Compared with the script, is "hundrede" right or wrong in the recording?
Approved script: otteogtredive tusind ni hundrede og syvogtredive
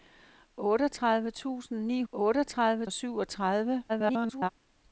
wrong